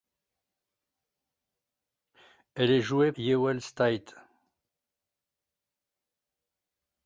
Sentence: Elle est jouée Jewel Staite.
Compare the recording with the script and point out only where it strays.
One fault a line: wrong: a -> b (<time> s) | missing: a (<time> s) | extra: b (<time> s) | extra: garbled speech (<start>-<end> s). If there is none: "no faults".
no faults